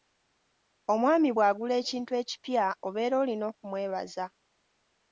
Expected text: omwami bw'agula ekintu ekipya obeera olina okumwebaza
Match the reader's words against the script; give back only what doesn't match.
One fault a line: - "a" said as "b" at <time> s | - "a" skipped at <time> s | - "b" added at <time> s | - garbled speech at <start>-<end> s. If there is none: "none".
none